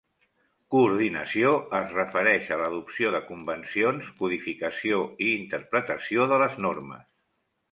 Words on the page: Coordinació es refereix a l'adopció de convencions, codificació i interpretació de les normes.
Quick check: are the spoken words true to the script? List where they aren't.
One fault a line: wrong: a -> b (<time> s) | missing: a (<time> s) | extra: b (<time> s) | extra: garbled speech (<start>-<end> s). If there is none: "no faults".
no faults